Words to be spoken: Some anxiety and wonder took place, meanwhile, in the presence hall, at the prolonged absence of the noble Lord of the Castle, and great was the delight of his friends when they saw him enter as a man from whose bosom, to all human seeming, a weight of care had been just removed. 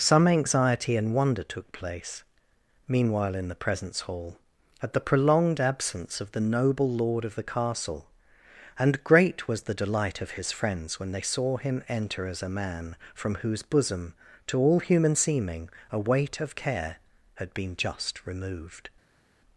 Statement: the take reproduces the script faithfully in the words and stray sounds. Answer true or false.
true